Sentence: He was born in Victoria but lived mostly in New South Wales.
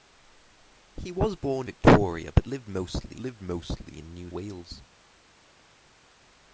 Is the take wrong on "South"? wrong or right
wrong